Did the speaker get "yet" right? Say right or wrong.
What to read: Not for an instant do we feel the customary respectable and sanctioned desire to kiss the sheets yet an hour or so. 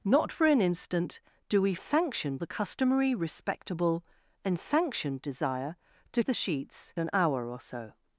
wrong